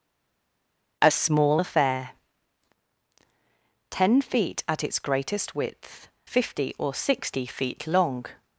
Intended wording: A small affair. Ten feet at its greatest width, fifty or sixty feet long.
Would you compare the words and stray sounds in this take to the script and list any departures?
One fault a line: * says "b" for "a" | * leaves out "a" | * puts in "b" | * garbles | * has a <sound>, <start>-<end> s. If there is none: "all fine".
all fine